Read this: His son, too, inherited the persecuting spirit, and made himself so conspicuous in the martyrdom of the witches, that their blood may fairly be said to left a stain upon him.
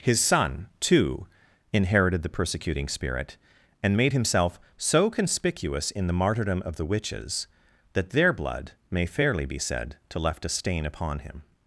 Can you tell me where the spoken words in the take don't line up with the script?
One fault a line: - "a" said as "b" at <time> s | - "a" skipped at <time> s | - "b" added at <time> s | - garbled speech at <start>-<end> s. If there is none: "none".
none